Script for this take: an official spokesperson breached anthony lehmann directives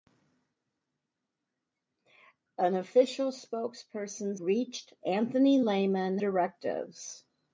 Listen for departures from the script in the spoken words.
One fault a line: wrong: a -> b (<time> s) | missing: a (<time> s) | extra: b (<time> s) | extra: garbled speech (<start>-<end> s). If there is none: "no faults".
no faults